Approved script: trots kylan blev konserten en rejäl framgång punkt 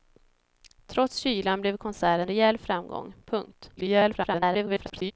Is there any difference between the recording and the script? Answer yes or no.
yes